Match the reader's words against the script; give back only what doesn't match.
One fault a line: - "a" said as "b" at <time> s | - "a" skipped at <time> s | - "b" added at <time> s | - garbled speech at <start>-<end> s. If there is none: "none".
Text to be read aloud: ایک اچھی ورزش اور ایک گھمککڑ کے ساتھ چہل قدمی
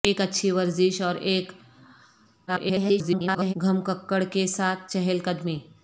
- garbled speech at 2.5-3.5 s